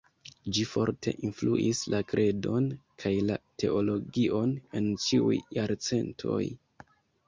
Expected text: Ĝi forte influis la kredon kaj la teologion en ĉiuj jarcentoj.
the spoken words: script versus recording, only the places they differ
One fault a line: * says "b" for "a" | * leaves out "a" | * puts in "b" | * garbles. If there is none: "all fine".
all fine